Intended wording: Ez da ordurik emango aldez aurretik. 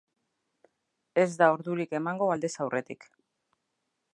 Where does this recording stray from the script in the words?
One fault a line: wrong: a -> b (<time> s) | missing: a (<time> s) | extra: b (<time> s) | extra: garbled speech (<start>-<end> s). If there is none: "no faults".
no faults